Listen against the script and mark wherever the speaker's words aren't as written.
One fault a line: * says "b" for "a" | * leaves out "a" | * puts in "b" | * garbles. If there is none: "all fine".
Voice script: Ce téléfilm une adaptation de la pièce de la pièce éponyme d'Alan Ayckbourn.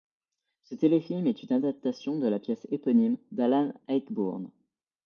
* puts in "est"
* leaves out "de la pièce"